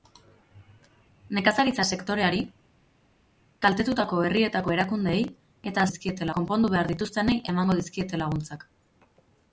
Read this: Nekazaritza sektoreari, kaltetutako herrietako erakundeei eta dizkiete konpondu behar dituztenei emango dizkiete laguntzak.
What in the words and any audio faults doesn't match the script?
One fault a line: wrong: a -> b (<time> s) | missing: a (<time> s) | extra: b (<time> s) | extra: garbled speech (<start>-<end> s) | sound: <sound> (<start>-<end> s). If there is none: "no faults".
no faults